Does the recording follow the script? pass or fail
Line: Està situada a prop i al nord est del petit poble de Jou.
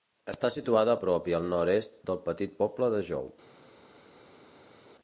pass